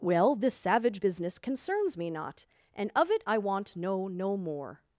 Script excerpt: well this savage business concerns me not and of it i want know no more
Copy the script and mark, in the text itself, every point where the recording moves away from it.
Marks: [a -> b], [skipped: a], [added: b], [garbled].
well this savage business concerns me not and of it i want know no more